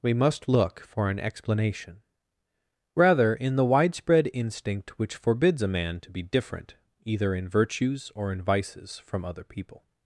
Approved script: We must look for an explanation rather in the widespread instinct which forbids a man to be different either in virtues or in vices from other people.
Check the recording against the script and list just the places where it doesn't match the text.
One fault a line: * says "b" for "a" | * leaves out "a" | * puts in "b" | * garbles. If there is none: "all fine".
all fine